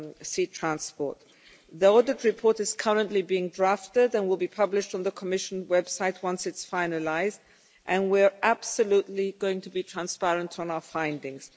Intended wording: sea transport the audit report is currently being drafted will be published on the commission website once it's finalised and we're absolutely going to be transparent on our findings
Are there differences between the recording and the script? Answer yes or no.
yes